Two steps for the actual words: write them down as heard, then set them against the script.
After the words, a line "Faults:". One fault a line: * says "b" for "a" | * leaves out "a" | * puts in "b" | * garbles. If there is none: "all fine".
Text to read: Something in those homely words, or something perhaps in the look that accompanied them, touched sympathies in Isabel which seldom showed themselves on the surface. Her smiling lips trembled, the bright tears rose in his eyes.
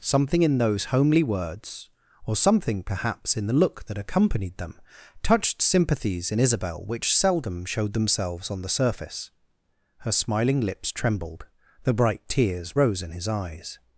Something in those homely words, or something perhaps in the look that accompanied them, touched sympathies in Isabel which seldom showed themselves on the surface. Her smiling lips trembled, the bright tears rose in his eyes.
Faults:
all fine